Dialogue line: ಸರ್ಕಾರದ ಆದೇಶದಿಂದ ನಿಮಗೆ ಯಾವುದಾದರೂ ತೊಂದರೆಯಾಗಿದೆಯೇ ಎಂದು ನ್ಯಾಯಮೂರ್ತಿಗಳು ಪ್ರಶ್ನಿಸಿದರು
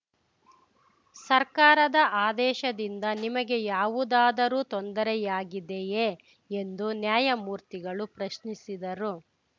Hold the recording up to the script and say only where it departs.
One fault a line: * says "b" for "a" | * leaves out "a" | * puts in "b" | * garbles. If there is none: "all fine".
all fine